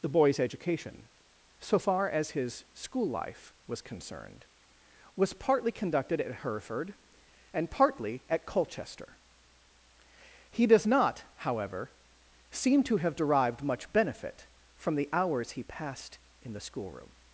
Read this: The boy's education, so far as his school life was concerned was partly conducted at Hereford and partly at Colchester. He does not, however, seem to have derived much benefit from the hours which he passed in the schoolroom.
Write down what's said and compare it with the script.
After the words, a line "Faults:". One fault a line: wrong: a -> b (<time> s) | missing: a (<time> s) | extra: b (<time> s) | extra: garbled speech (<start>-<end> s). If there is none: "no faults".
The boy's education, so far as his school life was concerned was partly conducted at Hereford and partly at Colchester. He does not, however, seem to have derived much benefit from the hours he passed in the schoolroom.
Faults:
missing: which (15.5 s)